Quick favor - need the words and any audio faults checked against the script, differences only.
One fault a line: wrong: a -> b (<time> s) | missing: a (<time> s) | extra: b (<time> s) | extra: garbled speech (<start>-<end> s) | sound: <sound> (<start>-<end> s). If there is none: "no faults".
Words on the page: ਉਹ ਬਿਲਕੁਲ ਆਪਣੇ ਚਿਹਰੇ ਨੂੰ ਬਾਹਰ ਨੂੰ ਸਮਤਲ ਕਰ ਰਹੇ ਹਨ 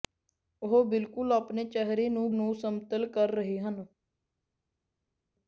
missing: ਬਾਹਰ (2.3 s)